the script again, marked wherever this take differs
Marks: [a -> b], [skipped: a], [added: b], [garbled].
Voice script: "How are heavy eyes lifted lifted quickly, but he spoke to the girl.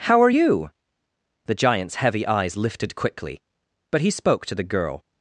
"How are [added: you The giant's] heavy eyes lifted [skipped: lifted] quickly, but he spoke to the girl.